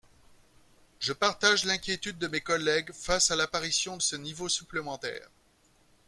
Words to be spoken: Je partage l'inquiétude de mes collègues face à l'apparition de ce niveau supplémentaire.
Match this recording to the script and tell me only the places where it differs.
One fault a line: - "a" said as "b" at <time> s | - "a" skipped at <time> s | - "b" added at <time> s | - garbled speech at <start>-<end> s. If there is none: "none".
- "de" skipped at 4.0 s